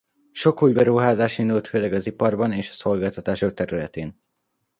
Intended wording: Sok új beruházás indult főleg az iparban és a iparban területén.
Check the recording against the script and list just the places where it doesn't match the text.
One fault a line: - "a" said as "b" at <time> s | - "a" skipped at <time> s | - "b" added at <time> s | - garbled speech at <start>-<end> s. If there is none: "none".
- "iparban" said as "szolgáltatások" at 2.7 s